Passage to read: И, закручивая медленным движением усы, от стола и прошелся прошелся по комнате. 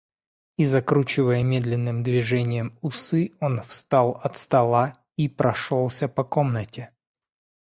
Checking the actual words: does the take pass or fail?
fail